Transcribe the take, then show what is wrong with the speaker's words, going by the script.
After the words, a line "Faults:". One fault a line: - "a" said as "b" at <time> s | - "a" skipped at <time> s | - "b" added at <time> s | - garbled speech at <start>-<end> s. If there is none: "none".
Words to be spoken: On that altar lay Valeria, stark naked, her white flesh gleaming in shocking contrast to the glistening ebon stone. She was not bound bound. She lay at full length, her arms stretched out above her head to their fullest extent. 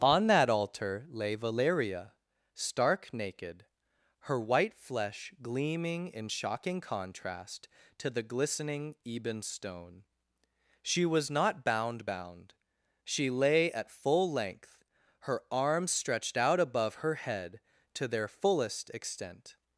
On that altar lay Valeria, stark naked, her white flesh gleaming in shocking contrast to the glistening ebon stone. She was not bound bound. She lay at full length, her arms stretched out above her head to their fullest extent.
Faults:
none